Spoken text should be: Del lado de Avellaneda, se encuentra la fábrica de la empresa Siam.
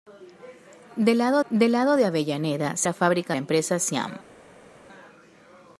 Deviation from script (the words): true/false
true